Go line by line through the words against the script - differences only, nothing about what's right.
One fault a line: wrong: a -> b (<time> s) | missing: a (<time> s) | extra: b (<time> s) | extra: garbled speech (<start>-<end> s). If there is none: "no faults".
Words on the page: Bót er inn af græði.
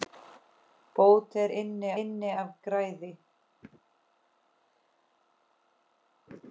extra: inn (2.0 s)